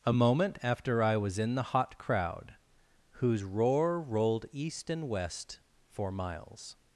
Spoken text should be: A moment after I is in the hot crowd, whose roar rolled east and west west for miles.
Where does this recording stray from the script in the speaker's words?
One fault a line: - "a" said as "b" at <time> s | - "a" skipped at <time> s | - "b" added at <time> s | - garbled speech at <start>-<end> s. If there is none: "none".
- "is" said as "was" at 1.1 s
- "west" skipped at 5.6 s